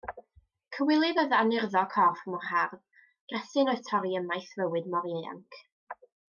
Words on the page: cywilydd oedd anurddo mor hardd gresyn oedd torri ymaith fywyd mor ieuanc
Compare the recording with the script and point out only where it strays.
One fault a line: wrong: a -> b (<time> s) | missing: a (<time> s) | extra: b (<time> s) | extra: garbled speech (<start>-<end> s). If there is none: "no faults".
extra: corff (1.9 s)